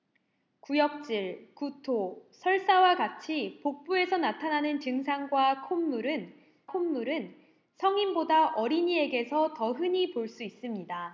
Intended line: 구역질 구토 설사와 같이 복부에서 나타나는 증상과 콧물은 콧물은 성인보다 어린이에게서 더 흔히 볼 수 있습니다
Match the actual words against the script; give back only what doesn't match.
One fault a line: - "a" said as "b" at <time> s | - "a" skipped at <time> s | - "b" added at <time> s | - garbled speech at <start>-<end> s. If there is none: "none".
none